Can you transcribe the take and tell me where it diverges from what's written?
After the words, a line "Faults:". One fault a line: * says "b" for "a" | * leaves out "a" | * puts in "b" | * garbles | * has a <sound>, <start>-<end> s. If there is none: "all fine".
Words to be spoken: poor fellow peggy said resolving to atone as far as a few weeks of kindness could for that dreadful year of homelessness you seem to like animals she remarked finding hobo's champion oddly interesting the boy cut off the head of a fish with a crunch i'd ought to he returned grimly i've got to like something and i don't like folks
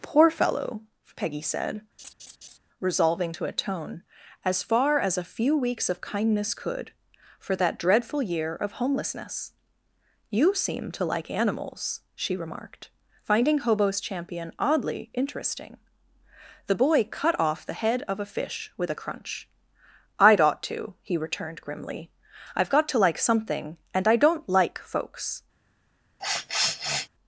poor fellow peggy said resolving to atone as far as a few weeks of kindness could for that dreadful year of homelessness you seem to like animals she remarked finding hobo's champion oddly interesting the boy cut off the head of a fish with a crunch i'd ought to he returned grimly i've got to like something and i don't like folks
Faults:
* has a laugh, 2.0-2.6 s
* has a sniff, 26.2-27.1 s